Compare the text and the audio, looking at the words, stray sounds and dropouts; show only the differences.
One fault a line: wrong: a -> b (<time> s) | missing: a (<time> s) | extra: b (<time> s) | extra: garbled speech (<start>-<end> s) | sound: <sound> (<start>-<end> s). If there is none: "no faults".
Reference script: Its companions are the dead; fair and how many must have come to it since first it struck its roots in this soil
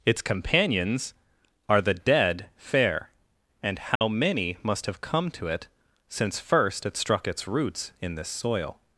sound: dropout (4.0-4.0 s)